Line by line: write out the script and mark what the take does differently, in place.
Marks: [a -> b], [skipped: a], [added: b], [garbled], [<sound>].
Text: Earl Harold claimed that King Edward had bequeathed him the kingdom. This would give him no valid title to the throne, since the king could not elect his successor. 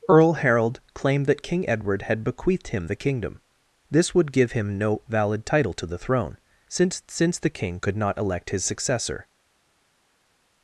Earl Harold claimed that King Edward had bequeathed him the kingdom. This would give him no valid title to the throne, since [added: since] the king could not elect his successor.